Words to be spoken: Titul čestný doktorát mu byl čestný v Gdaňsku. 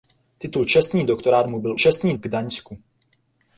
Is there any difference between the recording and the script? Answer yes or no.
no